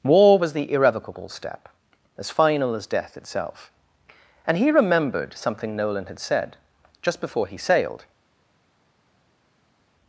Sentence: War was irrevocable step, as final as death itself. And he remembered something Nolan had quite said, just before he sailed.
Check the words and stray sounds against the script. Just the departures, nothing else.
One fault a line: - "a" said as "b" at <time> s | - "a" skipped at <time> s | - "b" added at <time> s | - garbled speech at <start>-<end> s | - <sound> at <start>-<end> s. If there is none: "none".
- "the" added at 0.5 s
- "quite" skipped at 6.2 s